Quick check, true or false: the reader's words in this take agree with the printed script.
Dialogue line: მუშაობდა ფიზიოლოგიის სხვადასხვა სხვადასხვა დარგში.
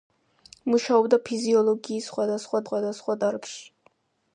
true